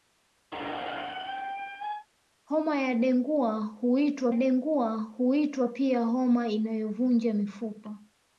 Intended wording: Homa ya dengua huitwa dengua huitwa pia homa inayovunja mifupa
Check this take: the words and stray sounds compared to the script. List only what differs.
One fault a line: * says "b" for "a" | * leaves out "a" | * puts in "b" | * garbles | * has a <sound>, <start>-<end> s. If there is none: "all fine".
* has a squeak, 0.5-2.1 s